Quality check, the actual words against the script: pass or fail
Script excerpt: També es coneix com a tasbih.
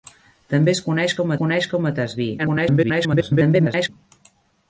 fail